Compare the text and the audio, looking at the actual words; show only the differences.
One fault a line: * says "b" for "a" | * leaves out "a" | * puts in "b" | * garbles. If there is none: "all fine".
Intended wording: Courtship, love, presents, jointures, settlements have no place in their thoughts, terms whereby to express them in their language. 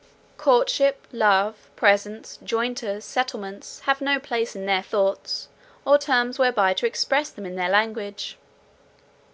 * puts in "or"